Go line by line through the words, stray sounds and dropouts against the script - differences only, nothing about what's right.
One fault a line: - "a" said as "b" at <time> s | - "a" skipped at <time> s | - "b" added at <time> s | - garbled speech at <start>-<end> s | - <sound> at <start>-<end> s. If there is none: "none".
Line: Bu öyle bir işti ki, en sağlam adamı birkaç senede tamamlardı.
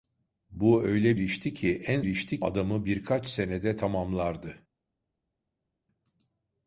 - "bir" skipped at 1.2 s
- "sağlam" said as "işti" at 2.1 s